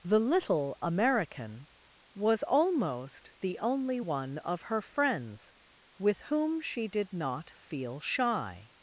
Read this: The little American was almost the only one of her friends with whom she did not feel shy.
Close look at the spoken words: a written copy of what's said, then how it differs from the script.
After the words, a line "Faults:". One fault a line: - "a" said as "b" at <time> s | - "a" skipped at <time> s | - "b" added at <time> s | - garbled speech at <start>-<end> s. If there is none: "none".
The little American was almost the only one of her friends with whom she did not feel shy.
Faults:
none